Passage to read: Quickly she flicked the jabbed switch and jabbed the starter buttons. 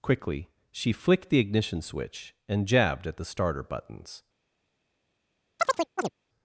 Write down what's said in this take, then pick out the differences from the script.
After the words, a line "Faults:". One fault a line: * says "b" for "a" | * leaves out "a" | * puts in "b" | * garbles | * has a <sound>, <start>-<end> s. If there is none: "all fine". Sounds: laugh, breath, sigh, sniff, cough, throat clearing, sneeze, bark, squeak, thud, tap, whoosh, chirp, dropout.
Quickly she flicked the ignition switch and jabbed at the starter buttons.
Faults:
* says "ignition" for "jabbed"
* puts in "at"
* has a chirp, 5.6-6.1 s